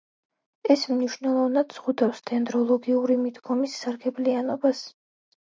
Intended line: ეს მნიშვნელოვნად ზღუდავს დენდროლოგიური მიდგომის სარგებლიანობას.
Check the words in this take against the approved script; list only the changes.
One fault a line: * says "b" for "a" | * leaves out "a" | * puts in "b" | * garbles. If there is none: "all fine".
all fine